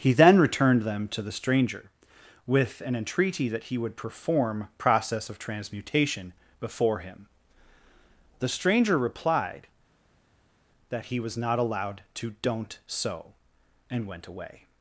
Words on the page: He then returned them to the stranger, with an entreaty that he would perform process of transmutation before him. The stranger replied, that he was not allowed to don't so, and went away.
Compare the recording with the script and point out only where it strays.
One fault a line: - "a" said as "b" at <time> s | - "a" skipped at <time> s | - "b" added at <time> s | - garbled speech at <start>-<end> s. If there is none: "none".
none